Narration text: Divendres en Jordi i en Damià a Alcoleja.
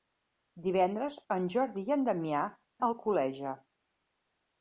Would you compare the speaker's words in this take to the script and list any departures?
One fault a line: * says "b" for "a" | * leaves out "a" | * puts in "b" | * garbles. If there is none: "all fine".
all fine